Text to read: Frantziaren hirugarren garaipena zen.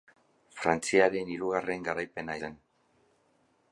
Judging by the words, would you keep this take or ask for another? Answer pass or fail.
pass